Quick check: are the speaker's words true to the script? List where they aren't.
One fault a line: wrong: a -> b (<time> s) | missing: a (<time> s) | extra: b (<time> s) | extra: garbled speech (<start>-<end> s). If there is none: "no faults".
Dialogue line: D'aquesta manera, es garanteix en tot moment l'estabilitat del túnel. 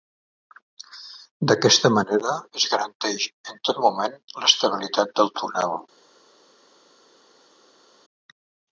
no faults